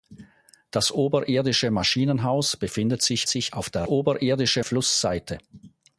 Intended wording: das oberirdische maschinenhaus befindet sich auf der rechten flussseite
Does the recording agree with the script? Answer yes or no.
no